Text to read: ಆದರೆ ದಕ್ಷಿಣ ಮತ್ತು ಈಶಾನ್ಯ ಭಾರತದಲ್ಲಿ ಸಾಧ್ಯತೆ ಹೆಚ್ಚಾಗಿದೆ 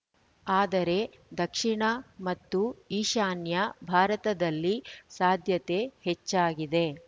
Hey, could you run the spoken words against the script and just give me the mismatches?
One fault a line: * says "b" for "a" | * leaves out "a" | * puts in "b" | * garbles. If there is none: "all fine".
all fine